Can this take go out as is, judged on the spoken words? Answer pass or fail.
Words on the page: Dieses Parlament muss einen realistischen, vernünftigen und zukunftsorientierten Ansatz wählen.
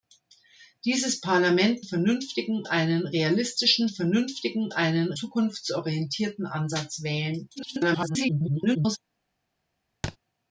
fail